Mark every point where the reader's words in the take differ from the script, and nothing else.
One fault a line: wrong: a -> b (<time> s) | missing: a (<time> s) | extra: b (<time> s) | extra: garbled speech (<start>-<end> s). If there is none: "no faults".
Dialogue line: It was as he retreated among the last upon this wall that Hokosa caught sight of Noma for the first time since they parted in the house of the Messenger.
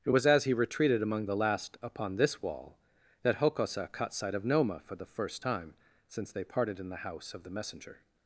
no faults